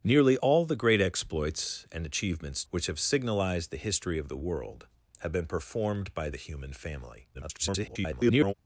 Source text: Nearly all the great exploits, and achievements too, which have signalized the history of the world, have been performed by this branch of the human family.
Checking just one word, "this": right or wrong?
wrong